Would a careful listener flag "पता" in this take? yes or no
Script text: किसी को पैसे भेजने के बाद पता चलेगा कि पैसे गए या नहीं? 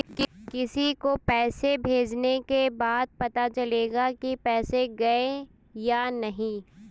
no